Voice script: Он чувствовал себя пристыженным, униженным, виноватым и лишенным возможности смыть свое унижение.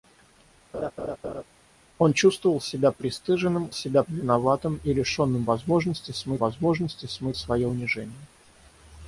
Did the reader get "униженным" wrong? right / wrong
wrong